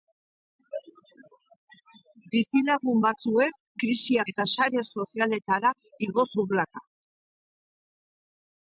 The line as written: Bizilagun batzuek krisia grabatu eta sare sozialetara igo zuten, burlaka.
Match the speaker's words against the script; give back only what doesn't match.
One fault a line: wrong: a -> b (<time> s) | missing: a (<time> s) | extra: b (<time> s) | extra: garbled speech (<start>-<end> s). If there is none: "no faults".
missing: grabatu (4.3 s)
missing: zuten (6.3 s)